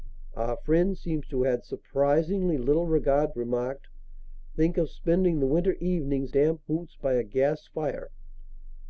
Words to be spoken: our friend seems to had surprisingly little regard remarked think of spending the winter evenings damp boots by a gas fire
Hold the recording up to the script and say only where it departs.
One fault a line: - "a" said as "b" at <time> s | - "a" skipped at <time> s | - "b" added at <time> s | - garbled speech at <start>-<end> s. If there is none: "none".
none